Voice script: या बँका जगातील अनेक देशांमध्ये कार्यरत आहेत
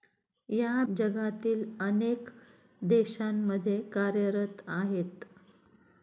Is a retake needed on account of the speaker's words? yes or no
yes